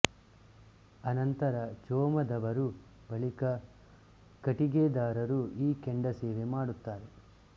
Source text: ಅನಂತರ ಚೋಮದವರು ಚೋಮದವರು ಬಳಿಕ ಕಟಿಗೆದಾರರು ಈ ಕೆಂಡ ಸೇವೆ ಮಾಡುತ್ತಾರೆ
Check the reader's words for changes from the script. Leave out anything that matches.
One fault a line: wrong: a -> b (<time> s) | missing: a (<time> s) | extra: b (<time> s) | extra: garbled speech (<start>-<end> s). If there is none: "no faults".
missing: ಚೋಮದವರು (2.7 s)